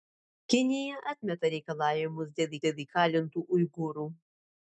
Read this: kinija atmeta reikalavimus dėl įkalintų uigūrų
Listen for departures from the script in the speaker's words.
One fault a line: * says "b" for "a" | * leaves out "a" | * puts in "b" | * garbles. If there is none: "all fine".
* puts in "dėl"